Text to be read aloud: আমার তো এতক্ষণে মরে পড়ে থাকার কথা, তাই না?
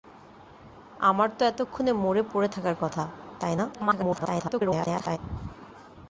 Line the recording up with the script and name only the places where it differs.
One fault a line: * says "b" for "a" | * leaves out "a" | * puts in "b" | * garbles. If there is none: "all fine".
* garbles